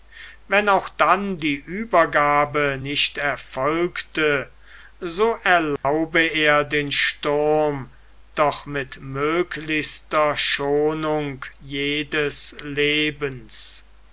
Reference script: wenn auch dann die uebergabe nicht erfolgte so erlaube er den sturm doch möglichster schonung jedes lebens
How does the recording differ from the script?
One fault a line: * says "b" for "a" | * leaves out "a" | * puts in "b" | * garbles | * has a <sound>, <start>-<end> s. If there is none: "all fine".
* has a dropout, 5.8-5.8 s
* puts in "mit"